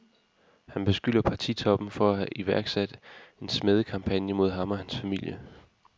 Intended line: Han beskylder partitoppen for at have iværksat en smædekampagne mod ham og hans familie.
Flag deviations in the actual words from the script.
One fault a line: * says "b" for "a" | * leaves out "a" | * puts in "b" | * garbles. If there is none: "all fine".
all fine